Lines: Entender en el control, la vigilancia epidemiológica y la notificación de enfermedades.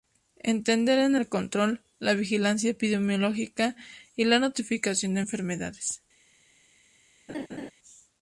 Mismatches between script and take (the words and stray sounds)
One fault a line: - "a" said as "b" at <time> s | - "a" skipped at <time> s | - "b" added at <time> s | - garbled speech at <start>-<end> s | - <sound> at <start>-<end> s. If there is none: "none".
- laugh at 7.3-7.7 s